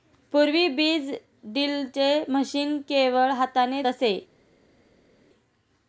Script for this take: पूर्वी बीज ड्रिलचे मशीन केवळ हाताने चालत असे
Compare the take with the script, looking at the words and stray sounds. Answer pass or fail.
fail